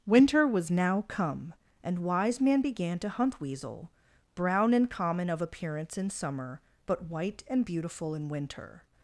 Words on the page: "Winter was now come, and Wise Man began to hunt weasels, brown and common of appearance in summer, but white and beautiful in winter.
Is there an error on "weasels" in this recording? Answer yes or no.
yes